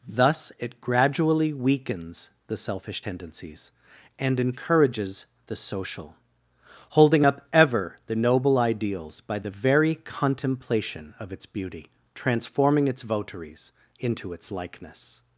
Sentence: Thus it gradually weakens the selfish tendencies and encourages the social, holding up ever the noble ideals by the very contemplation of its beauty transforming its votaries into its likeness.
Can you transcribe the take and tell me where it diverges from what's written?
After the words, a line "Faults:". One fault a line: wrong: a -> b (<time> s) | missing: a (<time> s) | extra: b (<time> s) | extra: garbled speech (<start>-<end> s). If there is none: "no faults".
Thus it gradually weakens the selfish tendencies and encourages the social, holding up ever the noble ideals by the very contemplation of its beauty transforming its votaries into its likeness.
Faults:
no faults